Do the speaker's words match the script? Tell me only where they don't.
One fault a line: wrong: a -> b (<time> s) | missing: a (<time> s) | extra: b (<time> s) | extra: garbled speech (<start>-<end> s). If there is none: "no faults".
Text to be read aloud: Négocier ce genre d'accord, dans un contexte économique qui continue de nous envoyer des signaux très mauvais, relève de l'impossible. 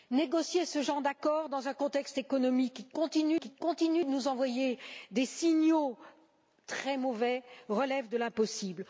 extra: qui continue (3.4 s)